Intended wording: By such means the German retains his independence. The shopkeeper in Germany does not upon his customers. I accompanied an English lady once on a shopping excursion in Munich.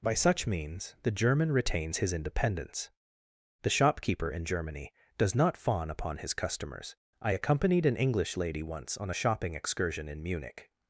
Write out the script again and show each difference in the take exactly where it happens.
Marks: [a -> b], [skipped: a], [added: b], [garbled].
By such means the German retains his independence. The shopkeeper in Germany does not [added: fawn] upon his customers. I accompanied an English lady once on a shopping excursion in Munich.